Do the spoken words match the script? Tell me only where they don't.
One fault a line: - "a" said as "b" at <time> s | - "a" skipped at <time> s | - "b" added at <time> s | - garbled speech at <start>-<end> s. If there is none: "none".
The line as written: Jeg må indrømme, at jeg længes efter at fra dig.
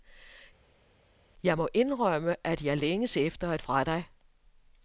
none